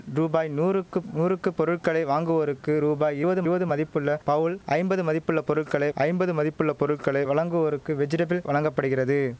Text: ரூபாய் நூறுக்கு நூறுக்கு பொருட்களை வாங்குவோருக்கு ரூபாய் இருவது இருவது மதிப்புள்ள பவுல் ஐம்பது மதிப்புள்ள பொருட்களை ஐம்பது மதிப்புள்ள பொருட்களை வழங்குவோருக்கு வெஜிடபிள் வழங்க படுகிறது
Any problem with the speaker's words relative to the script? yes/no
no